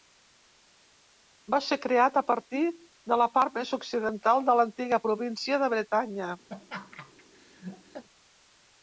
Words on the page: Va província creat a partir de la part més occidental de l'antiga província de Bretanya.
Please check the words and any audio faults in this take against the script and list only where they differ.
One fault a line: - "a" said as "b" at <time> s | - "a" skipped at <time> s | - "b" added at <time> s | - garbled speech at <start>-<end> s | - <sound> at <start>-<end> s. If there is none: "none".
- "província" said as "ser" at 1.6 s
- laugh at 6.5-8.0 s